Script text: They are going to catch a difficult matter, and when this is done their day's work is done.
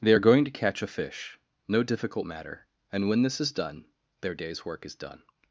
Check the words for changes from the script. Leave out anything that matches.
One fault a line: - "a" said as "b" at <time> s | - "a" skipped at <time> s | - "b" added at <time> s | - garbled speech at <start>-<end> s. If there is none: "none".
- "fish no" added at 0.9 s